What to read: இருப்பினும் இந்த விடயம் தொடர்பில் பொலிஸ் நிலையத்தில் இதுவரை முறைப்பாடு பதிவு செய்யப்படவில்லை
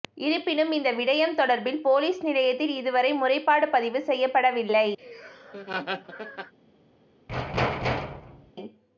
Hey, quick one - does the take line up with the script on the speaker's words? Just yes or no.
yes